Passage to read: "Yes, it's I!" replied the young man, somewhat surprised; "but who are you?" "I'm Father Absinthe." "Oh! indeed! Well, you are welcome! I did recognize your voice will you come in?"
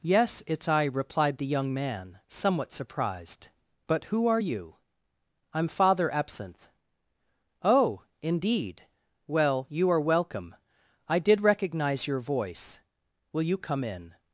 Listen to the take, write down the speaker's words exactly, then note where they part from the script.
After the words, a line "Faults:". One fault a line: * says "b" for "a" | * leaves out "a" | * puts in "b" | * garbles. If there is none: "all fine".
"Yes, it's I!" replied the young man, somewhat surprised; "but who are you?" "I'm Father Absinthe." "Oh! indeed! Well, you are welcome! I did recognize your voice will you come in?"
Faults:
all fine